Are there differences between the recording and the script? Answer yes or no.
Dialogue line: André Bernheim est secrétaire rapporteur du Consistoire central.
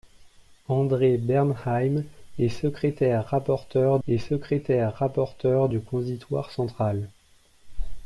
yes